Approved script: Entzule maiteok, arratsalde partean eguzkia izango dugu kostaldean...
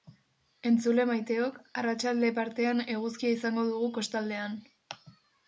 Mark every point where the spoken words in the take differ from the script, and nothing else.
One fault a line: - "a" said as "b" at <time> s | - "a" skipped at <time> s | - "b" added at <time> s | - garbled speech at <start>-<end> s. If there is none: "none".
none